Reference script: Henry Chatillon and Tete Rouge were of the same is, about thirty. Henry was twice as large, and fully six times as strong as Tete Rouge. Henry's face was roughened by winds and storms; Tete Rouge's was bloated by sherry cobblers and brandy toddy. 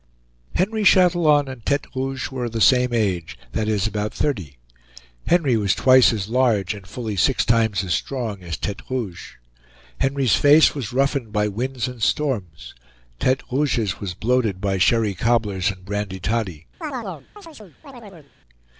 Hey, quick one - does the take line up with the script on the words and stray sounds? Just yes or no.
no